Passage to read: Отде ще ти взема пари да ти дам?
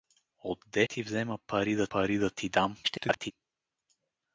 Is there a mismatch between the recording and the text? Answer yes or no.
yes